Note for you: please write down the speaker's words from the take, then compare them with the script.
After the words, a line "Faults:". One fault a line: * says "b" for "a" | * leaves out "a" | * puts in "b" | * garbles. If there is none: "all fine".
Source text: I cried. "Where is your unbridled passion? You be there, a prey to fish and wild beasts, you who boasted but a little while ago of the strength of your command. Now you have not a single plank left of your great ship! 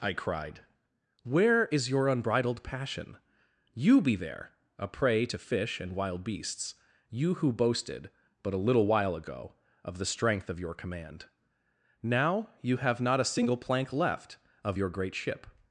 I cried. "Where is your unbridled passion? You be there, a prey to fish and wild beasts, you who boasted but a little while ago of the strength of your command. Now you have not a single plank left of your great ship!
Faults:
all fine